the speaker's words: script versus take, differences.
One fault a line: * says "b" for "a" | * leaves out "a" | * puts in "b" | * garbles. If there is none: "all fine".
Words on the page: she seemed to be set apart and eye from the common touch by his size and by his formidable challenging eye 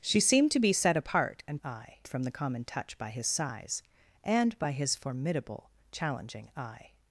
all fine